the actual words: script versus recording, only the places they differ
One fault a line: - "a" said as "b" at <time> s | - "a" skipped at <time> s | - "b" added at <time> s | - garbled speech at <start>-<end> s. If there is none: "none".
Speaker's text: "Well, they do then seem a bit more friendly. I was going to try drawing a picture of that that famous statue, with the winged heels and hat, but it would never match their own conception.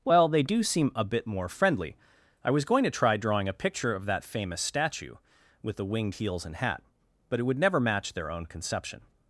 - "then" skipped at 0.6 s
- "that" skipped at 4.2 s